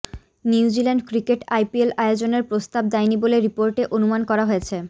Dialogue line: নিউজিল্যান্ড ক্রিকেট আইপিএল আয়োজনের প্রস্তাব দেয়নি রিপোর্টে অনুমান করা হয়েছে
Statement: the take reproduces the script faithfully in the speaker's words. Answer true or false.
false